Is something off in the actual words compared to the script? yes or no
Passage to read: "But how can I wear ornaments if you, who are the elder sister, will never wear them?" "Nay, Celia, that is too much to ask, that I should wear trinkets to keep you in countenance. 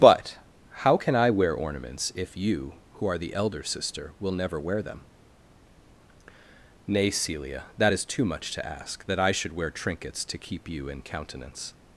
no